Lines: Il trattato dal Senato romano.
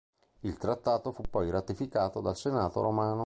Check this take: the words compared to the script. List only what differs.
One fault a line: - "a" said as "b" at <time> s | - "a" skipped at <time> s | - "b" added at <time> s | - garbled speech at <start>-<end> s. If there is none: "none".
- "fu poi ratificato" added at 1.1 s